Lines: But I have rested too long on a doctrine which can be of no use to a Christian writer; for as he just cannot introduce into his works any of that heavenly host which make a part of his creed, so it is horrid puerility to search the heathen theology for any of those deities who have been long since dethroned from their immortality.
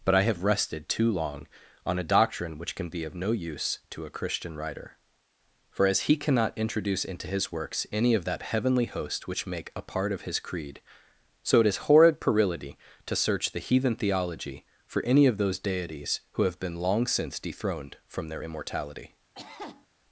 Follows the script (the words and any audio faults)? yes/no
no